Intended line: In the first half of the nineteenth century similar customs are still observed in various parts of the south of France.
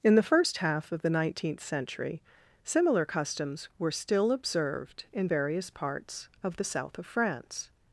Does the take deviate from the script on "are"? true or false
true